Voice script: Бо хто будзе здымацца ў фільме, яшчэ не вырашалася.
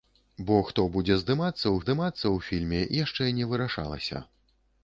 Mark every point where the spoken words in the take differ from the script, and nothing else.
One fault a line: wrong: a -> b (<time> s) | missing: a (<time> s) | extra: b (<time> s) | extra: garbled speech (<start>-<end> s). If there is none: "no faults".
extra: здымацца ў (1.8 s)